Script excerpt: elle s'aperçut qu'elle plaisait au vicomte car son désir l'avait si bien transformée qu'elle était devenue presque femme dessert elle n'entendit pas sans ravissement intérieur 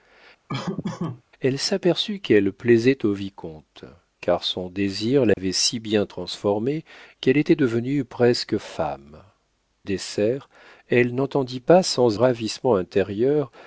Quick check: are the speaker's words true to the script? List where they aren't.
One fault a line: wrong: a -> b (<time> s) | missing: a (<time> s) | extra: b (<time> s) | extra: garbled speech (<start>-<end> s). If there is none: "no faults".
no faults